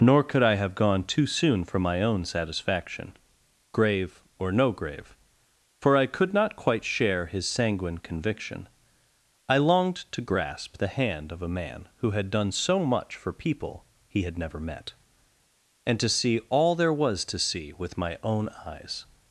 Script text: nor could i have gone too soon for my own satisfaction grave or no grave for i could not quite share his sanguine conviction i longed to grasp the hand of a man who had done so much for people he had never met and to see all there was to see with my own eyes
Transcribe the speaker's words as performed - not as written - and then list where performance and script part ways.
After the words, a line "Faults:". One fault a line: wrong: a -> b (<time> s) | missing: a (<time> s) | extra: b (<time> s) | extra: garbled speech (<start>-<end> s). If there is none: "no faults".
nor could i have gone too soon for my own satisfaction grave or no grave for i could not quite share his sanguine conviction i longed to grasp the hand of a man who had done so much for people he had never met and to see all there was to see with my own eyes
Faults:
no faults